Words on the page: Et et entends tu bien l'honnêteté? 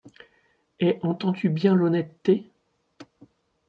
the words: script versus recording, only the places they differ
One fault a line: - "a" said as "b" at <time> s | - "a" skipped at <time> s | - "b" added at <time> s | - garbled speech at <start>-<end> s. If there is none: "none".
- "et" skipped at 1.0 s